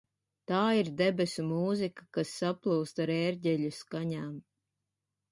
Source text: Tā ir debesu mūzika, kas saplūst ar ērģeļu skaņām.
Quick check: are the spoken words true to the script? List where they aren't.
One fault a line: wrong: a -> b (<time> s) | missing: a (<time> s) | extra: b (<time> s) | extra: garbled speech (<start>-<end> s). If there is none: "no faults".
no faults